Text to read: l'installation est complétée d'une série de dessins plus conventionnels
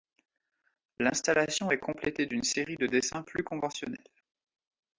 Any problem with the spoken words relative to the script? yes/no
no